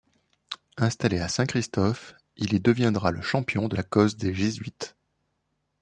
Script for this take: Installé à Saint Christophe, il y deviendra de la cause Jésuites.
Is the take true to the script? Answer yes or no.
no